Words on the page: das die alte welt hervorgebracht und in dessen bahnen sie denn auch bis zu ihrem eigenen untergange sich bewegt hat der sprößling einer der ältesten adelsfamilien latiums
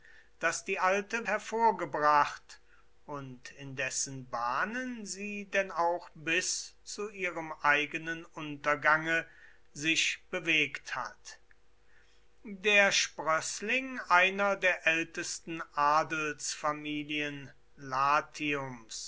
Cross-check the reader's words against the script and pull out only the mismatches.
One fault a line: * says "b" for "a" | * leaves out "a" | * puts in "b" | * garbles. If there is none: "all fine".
* leaves out "welt"